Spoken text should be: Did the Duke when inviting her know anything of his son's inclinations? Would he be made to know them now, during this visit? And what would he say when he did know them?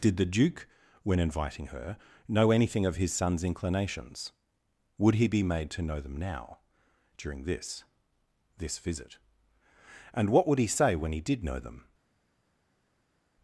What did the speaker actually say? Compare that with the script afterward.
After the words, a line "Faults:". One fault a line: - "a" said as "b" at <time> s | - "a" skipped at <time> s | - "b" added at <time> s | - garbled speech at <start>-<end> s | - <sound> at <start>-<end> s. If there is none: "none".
Did the Duke when inviting her know anything of his son's inclinations? Would he be made to know them now, during this this visit? And what would he say when he did know them?
Faults:
- "this" added at 8.6 s